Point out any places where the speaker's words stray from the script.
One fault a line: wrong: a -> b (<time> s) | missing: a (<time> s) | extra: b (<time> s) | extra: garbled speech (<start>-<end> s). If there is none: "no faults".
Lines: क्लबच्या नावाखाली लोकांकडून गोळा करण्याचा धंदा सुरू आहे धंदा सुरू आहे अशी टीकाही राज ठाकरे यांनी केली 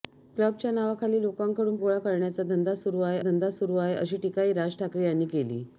no faults